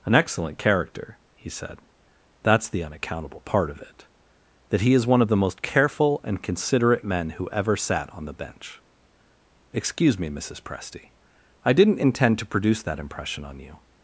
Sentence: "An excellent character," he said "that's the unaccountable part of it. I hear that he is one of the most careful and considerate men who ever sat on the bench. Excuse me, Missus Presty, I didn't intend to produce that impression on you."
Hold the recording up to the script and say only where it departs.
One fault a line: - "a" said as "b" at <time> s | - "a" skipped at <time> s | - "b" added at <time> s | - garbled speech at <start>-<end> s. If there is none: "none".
- "I hear" skipped at 4.1 s